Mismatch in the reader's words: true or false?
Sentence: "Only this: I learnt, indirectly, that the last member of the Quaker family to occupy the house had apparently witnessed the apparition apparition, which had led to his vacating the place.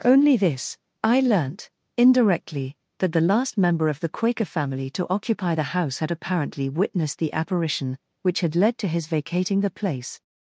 true